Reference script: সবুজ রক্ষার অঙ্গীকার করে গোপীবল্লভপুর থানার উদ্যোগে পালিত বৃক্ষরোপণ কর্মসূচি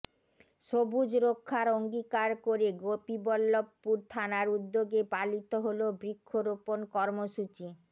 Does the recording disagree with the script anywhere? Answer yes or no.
yes